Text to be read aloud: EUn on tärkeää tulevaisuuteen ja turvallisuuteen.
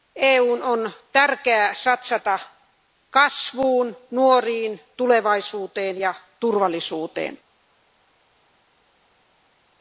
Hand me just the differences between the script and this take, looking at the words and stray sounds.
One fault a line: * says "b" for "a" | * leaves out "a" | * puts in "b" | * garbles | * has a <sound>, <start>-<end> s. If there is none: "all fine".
* puts in "satsata kasvuun nuoriin"